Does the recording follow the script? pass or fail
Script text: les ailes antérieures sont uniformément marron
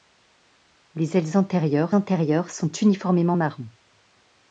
fail